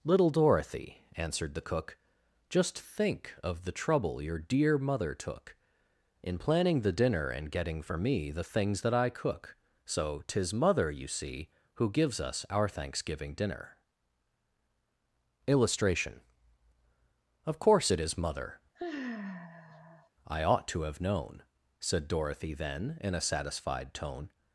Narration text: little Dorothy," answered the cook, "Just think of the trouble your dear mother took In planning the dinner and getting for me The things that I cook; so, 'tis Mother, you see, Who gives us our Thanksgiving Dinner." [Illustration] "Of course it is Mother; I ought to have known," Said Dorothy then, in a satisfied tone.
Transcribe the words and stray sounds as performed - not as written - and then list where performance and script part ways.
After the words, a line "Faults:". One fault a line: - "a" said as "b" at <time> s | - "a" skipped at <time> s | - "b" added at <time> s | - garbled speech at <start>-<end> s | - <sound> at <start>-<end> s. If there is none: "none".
little Dorothy," answered the cook, "Just think of the trouble your dear mother took In planning the dinner and getting for me The things that I cook; so, 'tis Mother, you see, Who gives us our Thanksgiving Dinner." [Illustration] "Of course it is Mother; I ought to have known," Said Dorothy then, in a satisfied tone.
Faults:
- sigh at 18.7-20.1 s